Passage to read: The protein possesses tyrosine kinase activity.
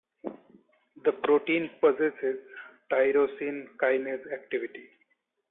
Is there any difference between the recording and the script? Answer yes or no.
no